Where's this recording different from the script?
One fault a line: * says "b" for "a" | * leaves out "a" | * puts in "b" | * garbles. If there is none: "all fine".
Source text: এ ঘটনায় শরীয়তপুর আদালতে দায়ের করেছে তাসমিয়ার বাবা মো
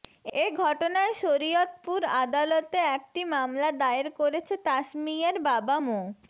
* puts in "একটি মামলা"